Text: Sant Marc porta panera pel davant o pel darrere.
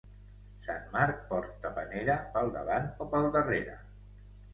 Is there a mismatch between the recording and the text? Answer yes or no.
no